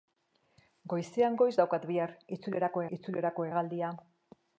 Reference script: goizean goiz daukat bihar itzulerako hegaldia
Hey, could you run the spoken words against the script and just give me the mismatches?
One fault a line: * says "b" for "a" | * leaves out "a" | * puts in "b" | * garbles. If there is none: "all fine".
* puts in "itzulerako"